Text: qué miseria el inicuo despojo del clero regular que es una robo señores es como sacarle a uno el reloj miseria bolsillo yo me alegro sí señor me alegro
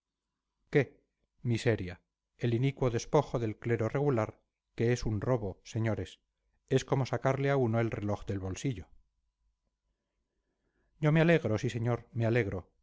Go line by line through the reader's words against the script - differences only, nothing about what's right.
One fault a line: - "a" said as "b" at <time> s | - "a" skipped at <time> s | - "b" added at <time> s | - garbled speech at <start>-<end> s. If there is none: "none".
- "una" said as "un" at 5.0 s
- "miseria" said as "del" at 8.2 s